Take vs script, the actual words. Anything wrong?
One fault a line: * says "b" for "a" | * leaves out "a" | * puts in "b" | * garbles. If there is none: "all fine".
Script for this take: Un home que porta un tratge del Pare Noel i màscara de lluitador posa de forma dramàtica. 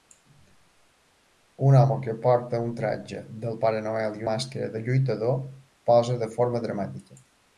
all fine